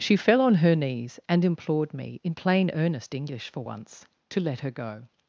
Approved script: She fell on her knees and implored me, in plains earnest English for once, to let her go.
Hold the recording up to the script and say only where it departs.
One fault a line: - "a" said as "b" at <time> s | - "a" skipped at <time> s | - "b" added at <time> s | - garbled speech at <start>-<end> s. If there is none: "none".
- "plains" said as "plain" at 2.3 s